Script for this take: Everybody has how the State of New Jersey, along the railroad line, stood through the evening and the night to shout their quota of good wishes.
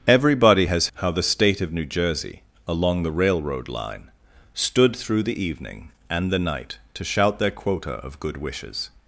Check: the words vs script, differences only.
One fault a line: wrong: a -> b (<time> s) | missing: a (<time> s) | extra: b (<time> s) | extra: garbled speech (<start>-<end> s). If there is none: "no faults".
no faults